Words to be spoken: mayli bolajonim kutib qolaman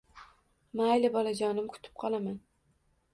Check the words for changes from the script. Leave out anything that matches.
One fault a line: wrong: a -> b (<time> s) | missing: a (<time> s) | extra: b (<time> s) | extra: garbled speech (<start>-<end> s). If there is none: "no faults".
no faults